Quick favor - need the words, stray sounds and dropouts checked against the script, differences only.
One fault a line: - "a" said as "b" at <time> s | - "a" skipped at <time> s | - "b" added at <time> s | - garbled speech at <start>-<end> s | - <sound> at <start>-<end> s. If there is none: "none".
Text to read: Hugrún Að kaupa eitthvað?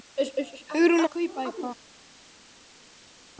none